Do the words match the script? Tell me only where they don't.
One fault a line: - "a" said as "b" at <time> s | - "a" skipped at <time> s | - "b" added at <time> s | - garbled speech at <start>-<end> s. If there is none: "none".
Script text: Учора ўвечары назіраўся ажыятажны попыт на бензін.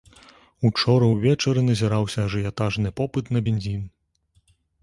none